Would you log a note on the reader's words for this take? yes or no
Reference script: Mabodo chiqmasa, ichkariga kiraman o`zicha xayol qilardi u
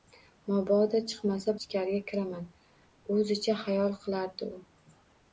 no